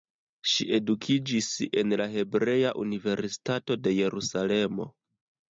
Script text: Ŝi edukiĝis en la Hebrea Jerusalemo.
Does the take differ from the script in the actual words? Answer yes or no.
yes